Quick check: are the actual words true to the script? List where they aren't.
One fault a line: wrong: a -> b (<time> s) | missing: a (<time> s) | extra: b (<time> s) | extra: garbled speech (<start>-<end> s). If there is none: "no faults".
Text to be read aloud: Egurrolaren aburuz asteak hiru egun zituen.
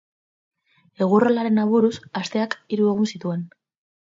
no faults